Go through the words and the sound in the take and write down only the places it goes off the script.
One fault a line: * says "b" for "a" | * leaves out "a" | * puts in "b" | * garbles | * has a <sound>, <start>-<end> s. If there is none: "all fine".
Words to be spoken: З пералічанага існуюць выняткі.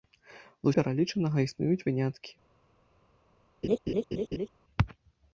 * has a laugh, 3.6-4.5 s